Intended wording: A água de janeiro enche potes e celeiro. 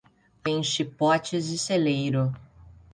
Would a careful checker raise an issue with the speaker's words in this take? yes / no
yes